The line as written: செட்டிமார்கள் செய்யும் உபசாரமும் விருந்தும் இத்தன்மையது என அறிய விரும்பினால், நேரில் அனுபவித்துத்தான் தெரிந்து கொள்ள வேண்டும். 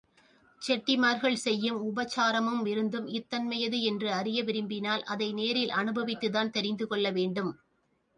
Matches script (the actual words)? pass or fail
fail